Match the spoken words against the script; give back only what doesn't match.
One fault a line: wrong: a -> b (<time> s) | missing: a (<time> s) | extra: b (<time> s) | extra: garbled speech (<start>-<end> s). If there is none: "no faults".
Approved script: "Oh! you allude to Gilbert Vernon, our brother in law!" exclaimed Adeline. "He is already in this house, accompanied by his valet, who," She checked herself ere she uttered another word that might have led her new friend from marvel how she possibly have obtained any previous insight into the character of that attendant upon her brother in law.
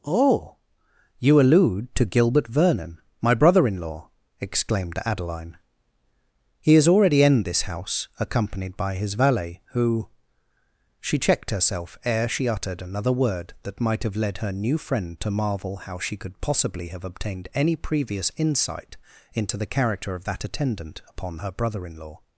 wrong: our -> my (3.2 s)
wrong: from -> to (15.2 s)
extra: could (16.1 s)